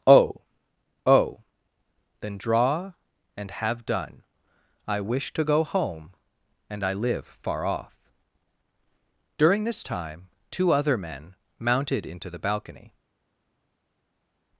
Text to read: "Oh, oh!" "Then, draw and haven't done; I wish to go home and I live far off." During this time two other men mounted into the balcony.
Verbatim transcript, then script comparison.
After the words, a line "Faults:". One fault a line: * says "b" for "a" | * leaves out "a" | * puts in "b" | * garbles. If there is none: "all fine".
"Oh, oh!" "Then, draw and have done; I wish to go home and I live far off." During this time two other men mounted into the balcony.
Faults:
* says "have" for "haven't"